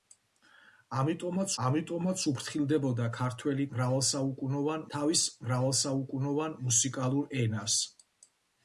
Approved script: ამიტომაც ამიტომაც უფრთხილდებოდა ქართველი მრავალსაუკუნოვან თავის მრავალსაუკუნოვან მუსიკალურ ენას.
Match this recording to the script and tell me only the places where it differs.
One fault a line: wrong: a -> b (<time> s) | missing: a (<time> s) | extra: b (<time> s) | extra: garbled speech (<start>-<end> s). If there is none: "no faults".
no faults